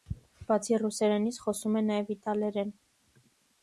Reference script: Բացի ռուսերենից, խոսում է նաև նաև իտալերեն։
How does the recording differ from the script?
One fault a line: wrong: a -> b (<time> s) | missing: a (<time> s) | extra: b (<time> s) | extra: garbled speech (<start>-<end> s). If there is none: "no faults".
missing: նաև (2.1 s)